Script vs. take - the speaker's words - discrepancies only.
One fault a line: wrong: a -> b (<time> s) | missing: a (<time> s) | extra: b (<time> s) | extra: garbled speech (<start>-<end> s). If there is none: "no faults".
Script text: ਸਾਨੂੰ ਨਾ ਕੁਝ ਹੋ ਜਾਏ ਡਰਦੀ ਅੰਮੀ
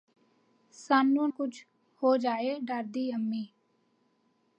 missing: ਨਾ (1.3 s)